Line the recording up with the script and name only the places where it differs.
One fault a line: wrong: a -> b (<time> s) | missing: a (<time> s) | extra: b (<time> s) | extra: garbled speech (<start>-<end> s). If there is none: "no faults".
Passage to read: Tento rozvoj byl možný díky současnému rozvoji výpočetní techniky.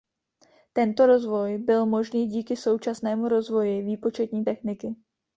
no faults